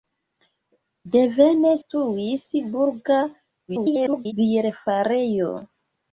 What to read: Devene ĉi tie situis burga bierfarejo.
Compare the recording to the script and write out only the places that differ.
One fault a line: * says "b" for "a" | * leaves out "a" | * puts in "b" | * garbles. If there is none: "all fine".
* leaves out "ĉi tie"
* garbles